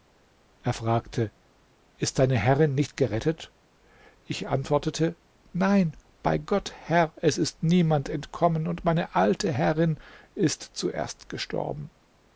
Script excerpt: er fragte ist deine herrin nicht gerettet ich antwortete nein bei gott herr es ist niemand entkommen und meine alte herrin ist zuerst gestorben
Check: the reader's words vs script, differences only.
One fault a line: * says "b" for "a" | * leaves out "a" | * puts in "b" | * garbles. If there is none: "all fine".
all fine